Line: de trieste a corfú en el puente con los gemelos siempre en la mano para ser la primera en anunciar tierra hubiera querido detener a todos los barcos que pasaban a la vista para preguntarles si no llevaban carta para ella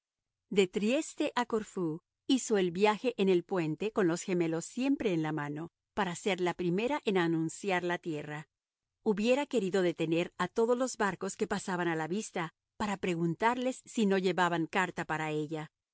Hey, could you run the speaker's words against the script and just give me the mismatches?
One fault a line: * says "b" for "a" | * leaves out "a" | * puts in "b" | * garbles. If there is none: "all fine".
* puts in "hizo el viaje"
* puts in "la"